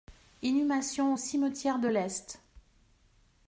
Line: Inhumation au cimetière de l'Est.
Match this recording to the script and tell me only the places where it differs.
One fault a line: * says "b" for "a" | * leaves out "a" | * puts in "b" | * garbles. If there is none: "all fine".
all fine